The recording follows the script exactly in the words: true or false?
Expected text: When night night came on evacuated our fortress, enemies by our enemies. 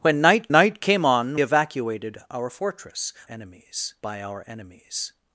true